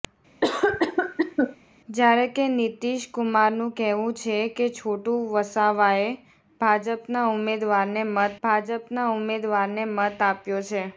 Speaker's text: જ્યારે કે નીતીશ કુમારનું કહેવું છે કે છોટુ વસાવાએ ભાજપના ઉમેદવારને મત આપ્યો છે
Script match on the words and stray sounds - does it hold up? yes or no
no